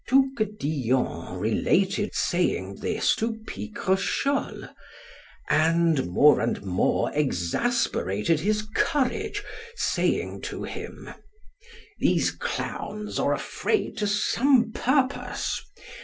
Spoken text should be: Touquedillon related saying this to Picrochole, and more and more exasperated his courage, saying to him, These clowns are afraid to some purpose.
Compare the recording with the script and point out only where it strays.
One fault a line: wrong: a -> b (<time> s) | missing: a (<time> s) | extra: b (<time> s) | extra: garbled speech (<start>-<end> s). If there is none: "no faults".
no faults